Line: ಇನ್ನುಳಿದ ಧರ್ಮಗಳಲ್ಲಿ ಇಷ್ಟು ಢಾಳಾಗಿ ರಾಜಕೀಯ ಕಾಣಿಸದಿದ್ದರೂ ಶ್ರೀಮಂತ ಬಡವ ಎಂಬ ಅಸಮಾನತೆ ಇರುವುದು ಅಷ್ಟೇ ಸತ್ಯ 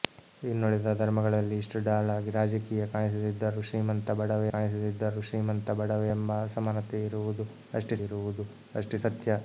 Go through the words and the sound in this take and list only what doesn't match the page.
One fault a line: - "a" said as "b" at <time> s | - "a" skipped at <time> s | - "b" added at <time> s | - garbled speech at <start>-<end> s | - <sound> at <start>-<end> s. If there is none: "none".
- "ಕಾಣಿಸದಿದ್ದರೂ ಶ್ರೀಮಂತ ಬಡವ" added at 4.5 s
- "ಇರುವುದು ಅಷ್ಟೇ" added at 8.0 s